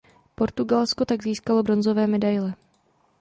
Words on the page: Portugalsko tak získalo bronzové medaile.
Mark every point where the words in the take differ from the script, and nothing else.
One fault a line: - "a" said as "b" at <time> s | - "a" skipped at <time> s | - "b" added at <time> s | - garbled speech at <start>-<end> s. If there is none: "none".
none